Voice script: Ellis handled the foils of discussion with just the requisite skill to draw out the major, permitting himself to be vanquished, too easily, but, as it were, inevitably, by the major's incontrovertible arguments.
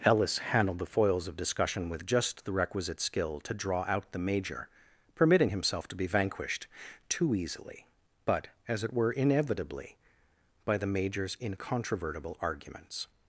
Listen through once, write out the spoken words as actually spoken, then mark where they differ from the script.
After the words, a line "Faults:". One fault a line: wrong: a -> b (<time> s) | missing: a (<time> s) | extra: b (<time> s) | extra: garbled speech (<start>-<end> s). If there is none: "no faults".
Ellis handled the foils of discussion with just the requisite skill to draw out the major, permitting himself to be vanquished, too easily, but, as it were, inevitably, by the major's incontrovertible arguments.
Faults:
no faults